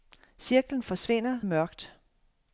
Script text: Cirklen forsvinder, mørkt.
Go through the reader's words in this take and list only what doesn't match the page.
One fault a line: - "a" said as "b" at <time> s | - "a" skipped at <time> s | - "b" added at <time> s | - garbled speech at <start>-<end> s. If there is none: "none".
none